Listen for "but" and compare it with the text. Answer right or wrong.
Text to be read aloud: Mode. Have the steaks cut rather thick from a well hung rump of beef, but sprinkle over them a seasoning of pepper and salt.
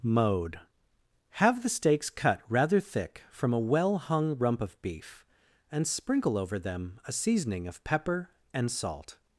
wrong